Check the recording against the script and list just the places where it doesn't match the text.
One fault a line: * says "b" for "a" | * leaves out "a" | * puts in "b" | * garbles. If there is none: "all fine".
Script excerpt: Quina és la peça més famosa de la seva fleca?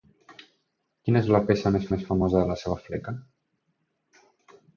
* puts in "més"